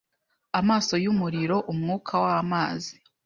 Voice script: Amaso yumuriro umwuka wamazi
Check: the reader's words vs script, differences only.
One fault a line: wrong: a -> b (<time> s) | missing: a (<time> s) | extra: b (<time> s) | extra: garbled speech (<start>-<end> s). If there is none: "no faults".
no faults